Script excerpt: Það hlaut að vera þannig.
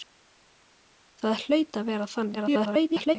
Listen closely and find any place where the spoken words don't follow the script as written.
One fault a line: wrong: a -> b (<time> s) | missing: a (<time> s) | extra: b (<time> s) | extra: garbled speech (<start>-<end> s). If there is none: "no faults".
extra: garbled speech (2.3-3.2 s)